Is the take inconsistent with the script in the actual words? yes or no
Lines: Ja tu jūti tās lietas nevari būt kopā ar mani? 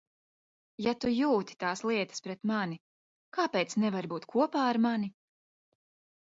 yes